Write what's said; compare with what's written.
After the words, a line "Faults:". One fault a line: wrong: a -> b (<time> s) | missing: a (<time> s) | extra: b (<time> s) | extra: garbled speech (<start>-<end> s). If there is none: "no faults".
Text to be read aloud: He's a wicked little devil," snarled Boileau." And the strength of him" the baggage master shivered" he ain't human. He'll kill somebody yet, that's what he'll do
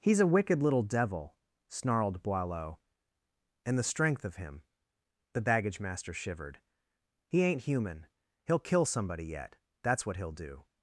He's a wicked little devil," snarled Boileau." And the strength of him" the baggage master shivered" he ain't human. He'll kill somebody yet, that's what he'll do
Faults:
no faults